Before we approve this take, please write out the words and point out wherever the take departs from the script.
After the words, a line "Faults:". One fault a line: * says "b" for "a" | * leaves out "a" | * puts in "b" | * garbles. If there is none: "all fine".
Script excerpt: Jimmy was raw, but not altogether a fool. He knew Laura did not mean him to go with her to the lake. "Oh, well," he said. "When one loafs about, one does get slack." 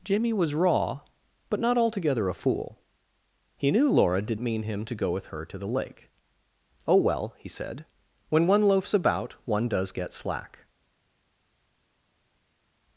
Jimmy was raw, but not altogether a fool. He knew Laura did mean him to go with her to the lake. "Oh, well," he said. "When one loafs about, one does get slack."
Faults:
* leaves out "not"